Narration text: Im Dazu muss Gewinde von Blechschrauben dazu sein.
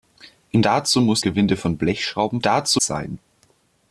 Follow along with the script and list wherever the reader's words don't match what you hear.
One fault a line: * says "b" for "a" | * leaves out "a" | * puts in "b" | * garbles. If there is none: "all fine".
all fine